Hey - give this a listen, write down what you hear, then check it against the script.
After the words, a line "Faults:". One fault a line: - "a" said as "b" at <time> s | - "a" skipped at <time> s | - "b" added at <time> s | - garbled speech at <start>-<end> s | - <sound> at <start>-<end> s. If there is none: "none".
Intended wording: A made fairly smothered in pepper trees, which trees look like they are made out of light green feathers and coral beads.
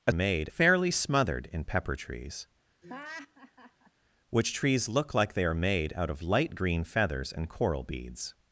A made fairly smothered in pepper trees, which trees look like they are made out of light green feathers and coral beads.
Faults:
- laugh at 2.8-3.9 s